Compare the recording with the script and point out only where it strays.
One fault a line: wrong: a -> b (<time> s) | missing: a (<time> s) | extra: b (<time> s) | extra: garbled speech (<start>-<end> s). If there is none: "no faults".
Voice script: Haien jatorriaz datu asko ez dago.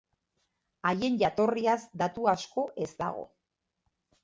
no faults